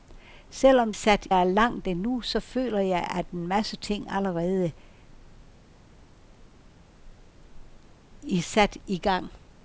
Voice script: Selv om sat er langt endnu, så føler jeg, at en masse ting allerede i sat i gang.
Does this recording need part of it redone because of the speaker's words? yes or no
no